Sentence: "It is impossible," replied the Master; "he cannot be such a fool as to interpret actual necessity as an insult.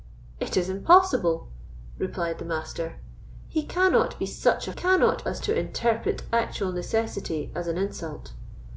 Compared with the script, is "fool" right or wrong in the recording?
wrong